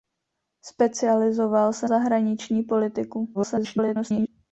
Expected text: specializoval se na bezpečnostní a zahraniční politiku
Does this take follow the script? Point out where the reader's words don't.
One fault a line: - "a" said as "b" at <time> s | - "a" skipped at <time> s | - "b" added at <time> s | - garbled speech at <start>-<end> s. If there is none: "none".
- "na bezpečnostní a" skipped at 1.9 s
- garbled speech at 3.3-4.3 s